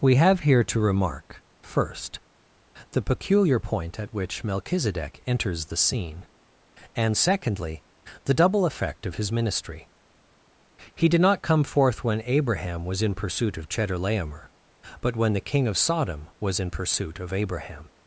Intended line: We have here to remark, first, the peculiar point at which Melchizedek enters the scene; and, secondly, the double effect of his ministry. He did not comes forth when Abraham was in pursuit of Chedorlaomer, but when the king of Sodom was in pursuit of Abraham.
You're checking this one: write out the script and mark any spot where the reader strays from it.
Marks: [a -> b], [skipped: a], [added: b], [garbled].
We have here to remark, first, the peculiar point at which Melchizedek enters the scene; and, secondly, the double effect of his ministry. He did not [comes -> come] forth when Abraham was in pursuit of Chedorlaomer, but when the king of Sodom was in pursuit of Abraham.